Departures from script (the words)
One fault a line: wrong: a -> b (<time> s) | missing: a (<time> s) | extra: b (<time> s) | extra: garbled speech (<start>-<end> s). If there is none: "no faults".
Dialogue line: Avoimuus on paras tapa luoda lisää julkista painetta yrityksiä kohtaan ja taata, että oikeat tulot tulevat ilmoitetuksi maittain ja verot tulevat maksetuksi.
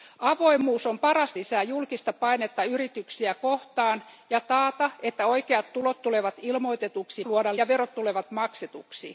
missing: tapa luoda (1.3 s)
wrong: maittain -> luoda (7.2 s)